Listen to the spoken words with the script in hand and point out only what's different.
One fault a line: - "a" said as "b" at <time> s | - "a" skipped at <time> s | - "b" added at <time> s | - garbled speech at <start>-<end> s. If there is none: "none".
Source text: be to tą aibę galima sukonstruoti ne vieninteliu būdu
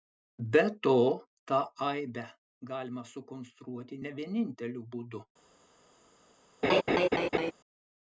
none